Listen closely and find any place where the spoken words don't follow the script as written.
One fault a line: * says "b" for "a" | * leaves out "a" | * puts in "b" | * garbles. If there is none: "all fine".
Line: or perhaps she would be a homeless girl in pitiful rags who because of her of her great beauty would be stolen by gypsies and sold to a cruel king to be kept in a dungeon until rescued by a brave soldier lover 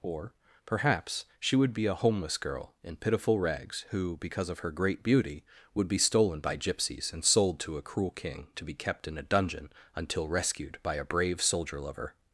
* leaves out "of her"